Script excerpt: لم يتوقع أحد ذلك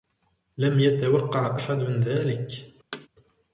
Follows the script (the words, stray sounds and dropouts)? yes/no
no